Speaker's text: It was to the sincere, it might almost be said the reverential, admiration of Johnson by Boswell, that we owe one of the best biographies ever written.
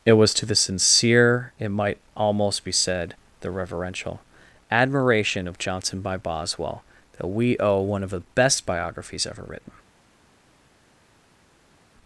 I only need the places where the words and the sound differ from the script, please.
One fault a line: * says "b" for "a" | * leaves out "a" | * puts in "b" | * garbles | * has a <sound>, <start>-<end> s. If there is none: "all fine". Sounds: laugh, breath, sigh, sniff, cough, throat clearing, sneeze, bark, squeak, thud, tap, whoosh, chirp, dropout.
all fine